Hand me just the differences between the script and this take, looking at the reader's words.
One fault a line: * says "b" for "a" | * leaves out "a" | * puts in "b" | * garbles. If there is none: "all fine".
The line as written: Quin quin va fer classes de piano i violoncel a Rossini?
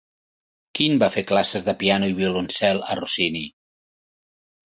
* leaves out "quin"